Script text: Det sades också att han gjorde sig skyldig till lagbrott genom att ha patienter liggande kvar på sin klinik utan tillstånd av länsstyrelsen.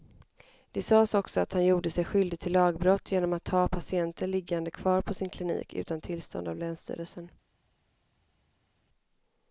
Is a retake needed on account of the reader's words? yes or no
no